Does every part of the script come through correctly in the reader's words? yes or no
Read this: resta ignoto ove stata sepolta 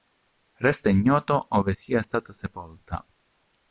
no